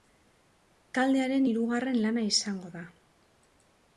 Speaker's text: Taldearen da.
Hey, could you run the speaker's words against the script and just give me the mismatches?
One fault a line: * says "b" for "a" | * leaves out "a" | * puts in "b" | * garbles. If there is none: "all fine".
* puts in "hirugarren lana izango"